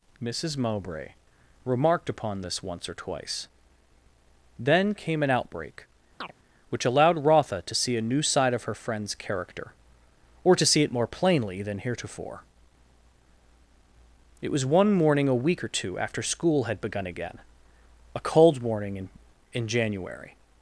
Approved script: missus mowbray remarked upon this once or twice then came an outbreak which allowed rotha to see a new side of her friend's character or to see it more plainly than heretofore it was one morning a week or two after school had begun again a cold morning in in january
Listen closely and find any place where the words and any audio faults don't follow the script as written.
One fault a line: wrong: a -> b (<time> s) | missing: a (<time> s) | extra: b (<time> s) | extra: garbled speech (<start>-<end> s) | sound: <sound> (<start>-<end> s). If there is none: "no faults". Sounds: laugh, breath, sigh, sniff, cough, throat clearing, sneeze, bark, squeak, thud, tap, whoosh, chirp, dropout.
sound: chirp (6.2-6.3 s)